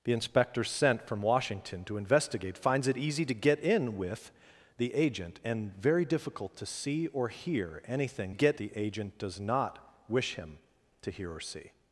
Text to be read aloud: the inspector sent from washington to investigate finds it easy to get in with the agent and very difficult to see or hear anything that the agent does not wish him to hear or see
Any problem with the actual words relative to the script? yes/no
yes